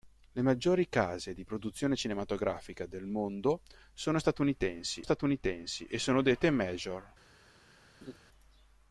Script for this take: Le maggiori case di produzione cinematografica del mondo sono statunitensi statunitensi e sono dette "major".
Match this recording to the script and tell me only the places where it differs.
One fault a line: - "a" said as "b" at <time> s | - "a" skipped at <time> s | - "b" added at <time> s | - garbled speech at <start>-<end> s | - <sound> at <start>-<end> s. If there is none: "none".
- laugh at 8.0-8.2 s